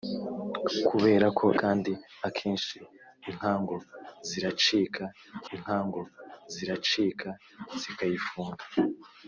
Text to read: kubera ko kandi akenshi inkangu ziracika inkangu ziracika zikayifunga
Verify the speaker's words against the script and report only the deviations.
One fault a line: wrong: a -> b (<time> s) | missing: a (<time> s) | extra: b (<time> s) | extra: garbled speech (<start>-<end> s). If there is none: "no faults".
no faults